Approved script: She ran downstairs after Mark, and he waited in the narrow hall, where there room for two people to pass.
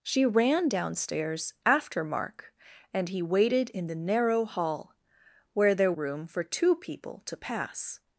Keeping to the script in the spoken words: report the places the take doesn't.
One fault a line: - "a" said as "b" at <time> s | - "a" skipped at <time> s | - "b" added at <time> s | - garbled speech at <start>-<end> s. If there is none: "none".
none